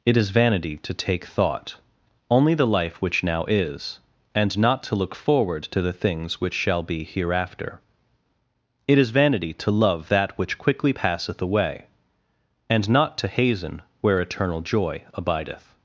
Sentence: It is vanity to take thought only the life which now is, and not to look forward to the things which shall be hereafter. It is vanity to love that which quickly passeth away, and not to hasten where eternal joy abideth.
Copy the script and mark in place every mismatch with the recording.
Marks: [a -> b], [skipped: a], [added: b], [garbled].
It is vanity to take thought only the life which now is, and not to look forward to the things which shall be hereafter. It is vanity to love that which quickly passeth away, and not to hasten where eternal joy abideth.